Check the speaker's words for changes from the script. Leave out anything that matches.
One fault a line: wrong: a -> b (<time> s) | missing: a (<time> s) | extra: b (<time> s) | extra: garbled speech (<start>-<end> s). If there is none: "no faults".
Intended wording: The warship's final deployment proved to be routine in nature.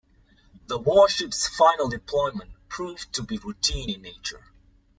no faults